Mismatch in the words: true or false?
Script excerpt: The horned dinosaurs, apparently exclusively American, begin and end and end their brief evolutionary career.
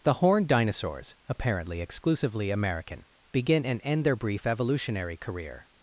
true